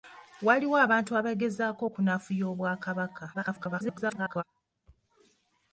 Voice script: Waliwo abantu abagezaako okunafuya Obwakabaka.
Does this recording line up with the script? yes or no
no